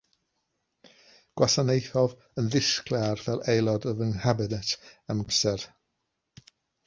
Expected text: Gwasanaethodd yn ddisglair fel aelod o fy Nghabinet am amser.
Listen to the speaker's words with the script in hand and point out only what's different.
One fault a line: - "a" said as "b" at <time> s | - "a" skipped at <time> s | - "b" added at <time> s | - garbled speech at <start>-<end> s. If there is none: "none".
none